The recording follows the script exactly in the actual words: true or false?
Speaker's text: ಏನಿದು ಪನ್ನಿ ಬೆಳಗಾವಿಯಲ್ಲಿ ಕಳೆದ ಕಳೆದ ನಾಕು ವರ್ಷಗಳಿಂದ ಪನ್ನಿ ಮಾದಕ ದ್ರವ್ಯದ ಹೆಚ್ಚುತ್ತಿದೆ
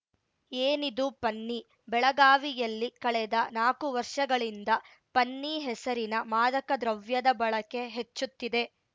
false